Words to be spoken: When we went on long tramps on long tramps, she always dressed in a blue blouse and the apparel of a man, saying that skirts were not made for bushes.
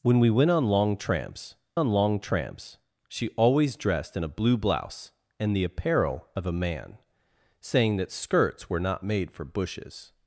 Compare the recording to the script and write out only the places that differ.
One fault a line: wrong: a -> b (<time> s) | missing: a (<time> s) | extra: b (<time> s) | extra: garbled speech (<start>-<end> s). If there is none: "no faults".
no faults